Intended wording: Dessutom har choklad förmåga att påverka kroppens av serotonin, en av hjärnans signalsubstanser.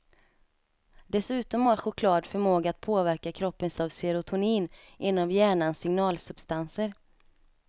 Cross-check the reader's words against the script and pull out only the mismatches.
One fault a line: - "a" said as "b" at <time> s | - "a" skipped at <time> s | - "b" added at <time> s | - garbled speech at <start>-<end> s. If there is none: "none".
none